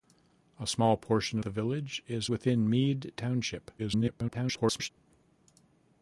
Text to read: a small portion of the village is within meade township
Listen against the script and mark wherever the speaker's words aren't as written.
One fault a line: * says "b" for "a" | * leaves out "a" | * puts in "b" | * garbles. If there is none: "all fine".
* leaves out "of"
* garbles